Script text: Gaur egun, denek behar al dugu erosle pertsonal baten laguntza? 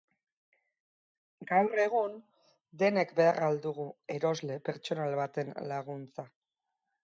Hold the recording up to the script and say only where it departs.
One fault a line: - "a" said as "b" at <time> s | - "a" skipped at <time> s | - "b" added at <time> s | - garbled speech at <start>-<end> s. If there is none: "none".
none